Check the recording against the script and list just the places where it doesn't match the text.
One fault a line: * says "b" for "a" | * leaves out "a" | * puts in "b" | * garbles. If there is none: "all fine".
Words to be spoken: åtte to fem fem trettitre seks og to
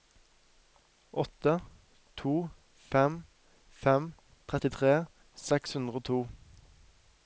* puts in "hundre"